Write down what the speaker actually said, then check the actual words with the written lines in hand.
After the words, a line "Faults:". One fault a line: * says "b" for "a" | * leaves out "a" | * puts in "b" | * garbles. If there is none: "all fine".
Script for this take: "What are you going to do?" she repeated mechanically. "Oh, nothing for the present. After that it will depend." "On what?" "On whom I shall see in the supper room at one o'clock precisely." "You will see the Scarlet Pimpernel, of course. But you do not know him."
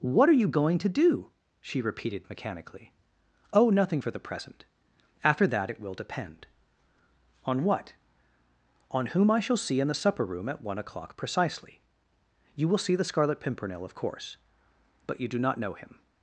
"What are you going to do?" she repeated mechanically. "Oh, nothing for the present. After that it will depend." "On what?" "On whom I shall see in the supper room at one o'clock precisely." "You will see the Scarlet Pimpernel, of course. But you do not know him."
Faults:
all fine